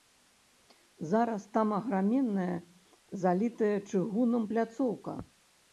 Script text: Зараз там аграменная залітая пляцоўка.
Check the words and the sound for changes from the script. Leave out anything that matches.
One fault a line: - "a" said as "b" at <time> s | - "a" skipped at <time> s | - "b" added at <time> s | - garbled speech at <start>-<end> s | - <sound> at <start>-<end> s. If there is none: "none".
- "чыгунам" added at 3.9 s